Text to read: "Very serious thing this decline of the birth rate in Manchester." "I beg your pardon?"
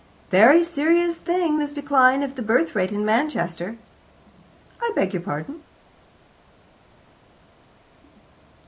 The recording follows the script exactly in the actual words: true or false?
true